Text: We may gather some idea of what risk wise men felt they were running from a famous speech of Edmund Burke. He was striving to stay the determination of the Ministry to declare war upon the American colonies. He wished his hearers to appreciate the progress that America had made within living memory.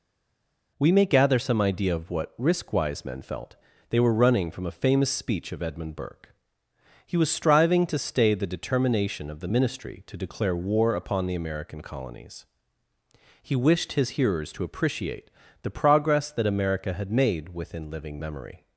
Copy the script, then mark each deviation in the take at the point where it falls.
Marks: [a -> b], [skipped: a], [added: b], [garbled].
We may gather some idea of what risk wise men felt they were running from a famous speech of Edmund Burke. He was striving to stay the determination of the Ministry to declare war upon the American colonies. He wished his hearers to appreciate the progress that America had made within living memory.